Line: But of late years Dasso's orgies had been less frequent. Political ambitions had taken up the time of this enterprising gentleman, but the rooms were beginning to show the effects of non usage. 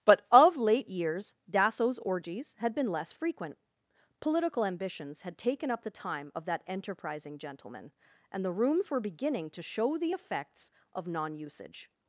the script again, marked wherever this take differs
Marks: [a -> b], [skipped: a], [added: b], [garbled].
But of late years Dasso's orgies had been less frequent. Political ambitions had taken up the time of [this -> that] enterprising gentleman, [but -> and] the rooms were beginning to show the effects of non usage.